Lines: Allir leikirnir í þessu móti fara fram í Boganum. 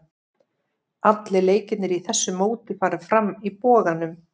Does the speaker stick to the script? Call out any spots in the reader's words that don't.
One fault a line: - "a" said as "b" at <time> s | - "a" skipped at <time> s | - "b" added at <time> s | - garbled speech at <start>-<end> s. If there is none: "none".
none